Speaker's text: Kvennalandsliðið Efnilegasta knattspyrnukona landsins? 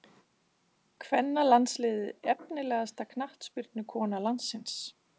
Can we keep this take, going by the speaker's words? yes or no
yes